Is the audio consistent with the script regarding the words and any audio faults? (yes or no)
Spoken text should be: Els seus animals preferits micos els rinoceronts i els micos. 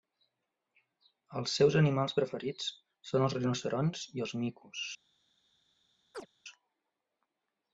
no